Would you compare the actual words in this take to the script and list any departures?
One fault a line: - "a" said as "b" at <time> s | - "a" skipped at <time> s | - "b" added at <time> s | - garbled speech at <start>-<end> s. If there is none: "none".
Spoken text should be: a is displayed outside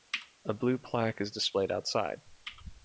- "blue plaque" added at 0.6 s